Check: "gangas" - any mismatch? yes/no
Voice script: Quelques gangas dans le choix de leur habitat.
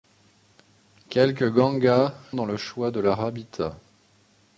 no